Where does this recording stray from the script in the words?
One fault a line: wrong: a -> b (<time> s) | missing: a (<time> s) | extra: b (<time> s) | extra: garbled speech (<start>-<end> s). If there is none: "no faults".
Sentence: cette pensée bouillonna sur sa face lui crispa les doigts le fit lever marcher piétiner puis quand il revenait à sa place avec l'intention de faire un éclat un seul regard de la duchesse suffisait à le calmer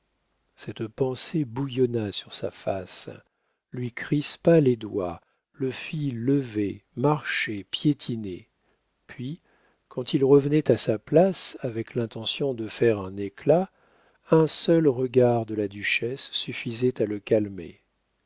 no faults